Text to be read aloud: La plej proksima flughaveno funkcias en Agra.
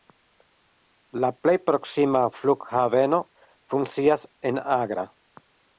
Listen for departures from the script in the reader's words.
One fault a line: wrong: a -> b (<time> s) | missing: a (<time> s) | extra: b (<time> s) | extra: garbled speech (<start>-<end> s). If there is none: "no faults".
no faults